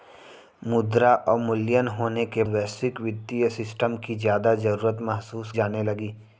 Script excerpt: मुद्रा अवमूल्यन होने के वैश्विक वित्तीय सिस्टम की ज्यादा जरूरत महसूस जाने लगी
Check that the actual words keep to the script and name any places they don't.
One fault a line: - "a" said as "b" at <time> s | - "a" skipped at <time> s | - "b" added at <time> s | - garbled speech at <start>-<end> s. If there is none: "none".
none